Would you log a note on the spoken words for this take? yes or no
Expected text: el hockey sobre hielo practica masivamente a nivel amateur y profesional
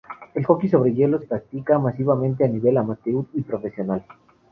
no